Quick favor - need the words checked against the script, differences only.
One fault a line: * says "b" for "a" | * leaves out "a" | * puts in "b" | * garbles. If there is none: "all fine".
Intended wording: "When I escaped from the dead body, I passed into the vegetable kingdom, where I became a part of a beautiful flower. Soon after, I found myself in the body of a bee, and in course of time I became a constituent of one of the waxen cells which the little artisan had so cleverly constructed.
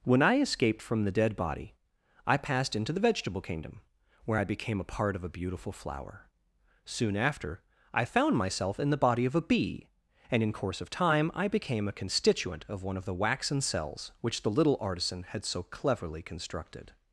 all fine